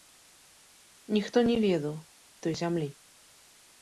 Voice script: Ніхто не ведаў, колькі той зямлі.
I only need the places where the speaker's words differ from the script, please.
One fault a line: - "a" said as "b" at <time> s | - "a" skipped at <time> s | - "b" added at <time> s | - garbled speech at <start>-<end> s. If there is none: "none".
- "колькі" skipped at 2.0 s